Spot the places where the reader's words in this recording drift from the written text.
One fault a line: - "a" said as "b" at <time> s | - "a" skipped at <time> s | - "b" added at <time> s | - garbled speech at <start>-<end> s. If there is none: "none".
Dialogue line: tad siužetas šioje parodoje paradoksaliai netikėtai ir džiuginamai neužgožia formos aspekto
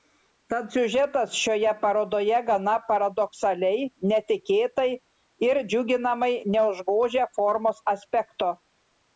- "gana" added at 2.5 s